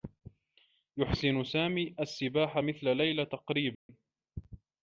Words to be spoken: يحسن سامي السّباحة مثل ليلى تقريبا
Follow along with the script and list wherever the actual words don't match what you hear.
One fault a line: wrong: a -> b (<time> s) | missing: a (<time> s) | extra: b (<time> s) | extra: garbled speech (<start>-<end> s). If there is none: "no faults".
no faults